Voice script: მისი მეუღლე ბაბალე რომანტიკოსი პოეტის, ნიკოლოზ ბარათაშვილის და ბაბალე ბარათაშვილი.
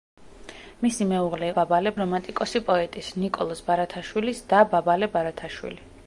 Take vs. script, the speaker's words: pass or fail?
pass